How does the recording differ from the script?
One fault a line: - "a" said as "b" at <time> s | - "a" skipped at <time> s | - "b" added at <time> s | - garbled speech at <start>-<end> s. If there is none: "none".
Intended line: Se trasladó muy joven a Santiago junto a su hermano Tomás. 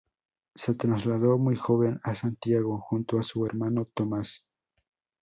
none